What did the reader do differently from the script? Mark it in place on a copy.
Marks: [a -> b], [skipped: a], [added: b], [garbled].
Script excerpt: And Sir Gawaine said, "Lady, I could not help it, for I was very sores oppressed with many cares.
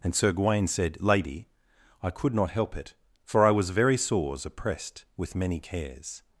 And Sir Gawaine said, "Lady, I could not help it, for I was very sores oppressed with many cares.